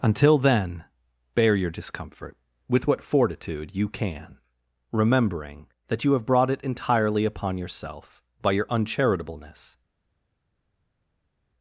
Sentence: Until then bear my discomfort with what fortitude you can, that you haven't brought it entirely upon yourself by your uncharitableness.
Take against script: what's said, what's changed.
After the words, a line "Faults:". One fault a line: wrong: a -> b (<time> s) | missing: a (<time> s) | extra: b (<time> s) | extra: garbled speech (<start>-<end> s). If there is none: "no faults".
Until then bear your discomfort with what fortitude you can, remembering that you have brought it entirely upon yourself by your uncharitableness.
Faults:
wrong: my -> your (1.6 s)
extra: remembering (4.9 s)
wrong: haven't -> have (6.1 s)